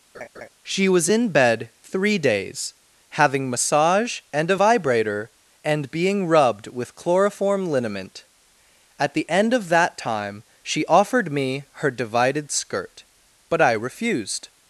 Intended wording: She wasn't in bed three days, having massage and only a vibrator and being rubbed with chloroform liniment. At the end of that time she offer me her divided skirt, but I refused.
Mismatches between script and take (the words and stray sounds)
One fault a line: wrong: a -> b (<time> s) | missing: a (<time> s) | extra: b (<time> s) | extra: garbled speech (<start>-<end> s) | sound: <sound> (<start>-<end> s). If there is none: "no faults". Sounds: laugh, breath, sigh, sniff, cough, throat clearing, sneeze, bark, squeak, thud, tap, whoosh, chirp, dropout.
sound: laugh (0.1-0.5 s)
wrong: wasn't -> was (0.9 s)
missing: only (4.5 s)
wrong: offer -> offered (10.9 s)